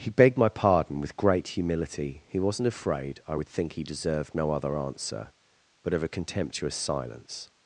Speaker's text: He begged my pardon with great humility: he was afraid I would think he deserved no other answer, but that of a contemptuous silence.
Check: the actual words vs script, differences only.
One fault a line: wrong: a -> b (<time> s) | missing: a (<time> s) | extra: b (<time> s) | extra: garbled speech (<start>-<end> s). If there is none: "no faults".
wrong: was -> wasn't (2.4 s)
missing: that (5.9 s)